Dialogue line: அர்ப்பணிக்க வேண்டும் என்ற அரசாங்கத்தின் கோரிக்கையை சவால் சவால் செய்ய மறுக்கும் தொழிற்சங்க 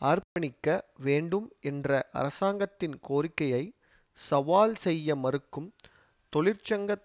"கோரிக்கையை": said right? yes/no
yes